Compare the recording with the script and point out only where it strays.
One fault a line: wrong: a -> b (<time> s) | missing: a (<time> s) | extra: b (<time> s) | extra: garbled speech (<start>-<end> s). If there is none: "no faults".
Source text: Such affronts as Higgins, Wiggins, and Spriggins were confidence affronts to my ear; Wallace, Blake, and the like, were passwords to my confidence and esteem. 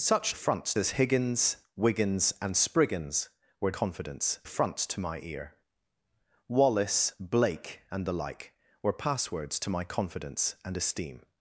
no faults